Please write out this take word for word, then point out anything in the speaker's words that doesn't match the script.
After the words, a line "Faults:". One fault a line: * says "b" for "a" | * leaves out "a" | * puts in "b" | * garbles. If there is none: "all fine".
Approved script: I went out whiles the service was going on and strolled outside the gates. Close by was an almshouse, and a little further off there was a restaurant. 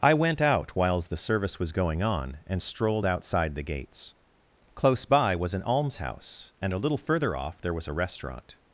I went out whiles the service was going on and strolled outside the gates. Close by was an almshouse, and a little further off there was a restaurant.
Faults:
all fine